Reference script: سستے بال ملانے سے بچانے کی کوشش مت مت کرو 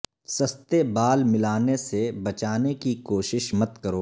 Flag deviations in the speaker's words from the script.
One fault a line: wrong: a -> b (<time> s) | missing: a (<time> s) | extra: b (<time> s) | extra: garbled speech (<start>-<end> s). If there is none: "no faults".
missing: مت (3.8 s)